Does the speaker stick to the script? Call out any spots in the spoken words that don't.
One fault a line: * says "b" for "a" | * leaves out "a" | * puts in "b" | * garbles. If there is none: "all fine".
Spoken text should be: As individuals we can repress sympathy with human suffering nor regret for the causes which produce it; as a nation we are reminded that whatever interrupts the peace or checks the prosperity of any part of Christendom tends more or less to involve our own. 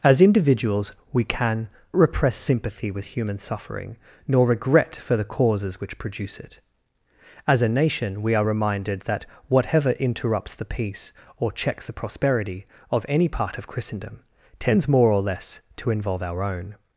all fine